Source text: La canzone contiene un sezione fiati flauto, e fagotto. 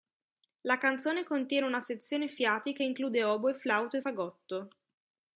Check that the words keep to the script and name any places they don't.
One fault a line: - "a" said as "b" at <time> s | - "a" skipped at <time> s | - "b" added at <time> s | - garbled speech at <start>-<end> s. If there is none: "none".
- "un" said as "una" at 1.7 s
- "che include oboe" added at 2.7 s